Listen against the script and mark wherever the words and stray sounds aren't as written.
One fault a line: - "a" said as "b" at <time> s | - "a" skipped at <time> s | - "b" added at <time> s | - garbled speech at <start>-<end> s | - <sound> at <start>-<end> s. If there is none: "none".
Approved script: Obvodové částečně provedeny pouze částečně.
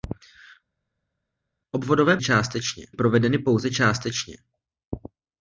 none